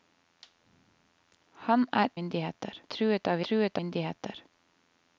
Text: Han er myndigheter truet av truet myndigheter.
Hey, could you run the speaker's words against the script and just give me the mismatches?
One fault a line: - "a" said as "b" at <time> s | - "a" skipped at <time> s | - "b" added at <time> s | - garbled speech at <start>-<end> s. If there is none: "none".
none